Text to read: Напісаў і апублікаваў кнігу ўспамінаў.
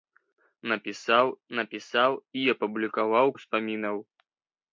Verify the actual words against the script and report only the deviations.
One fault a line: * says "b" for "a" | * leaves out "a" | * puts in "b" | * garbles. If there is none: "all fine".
* puts in "напісаў"
* leaves out "кнігу"